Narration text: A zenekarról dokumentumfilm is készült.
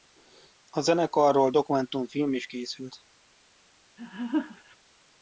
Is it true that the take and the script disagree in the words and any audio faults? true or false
true